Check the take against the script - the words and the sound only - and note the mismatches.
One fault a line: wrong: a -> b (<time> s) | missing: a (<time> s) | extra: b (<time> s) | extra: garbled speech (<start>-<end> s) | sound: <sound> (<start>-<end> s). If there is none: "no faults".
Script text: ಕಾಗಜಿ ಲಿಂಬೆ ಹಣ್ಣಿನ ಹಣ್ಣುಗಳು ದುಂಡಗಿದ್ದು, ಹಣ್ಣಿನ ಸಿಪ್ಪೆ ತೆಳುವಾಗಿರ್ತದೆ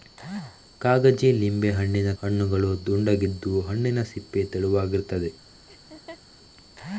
sound: laugh (5.7-6.2 s)